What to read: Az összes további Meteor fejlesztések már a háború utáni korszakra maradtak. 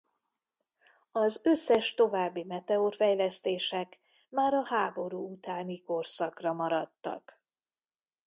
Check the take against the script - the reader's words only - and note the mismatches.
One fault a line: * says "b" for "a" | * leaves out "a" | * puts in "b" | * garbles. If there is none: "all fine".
all fine